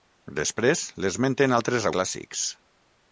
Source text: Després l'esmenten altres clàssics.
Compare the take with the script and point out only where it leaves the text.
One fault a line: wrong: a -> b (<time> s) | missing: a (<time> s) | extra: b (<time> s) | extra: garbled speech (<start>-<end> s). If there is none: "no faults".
no faults